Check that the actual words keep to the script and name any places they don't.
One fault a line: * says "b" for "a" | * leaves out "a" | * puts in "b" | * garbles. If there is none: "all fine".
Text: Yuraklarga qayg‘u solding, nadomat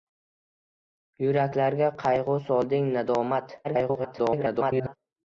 * garbles